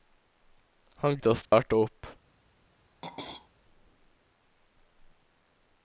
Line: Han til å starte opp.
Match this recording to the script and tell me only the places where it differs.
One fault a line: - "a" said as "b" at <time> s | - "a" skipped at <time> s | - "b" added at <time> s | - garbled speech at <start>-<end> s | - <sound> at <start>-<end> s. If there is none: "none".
- dropout at 1.5-1.5 s
- throat clearing at 3.0-3.5 s